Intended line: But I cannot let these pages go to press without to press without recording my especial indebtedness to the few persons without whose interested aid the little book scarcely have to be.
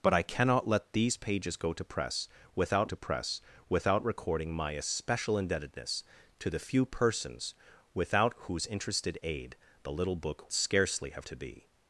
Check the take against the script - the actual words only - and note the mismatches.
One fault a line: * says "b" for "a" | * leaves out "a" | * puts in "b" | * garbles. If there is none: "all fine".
all fine